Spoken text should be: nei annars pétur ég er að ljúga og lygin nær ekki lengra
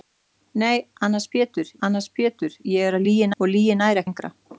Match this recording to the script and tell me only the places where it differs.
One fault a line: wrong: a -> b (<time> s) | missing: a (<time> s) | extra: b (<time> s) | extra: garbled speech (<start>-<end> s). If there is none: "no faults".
extra: annars pétur (1.9 s)
wrong: ljúga -> lygin (3.1 s)
missing: ekki (4.0 s)